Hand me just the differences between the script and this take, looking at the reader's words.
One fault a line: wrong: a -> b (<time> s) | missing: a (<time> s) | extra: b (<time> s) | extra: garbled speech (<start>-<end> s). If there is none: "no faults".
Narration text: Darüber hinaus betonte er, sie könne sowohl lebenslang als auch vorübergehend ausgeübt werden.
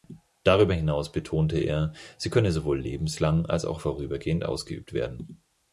no faults